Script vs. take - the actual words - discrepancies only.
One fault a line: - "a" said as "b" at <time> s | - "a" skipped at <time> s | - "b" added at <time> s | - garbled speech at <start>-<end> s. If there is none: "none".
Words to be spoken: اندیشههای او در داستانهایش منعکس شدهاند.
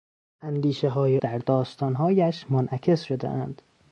- "او" skipped at 1.2 s